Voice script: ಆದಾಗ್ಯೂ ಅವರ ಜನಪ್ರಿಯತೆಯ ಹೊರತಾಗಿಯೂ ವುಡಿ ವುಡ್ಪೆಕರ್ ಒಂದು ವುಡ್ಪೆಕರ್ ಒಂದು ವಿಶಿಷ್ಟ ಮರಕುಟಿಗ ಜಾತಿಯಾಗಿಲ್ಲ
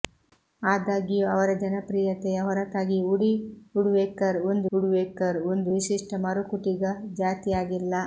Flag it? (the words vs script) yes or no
no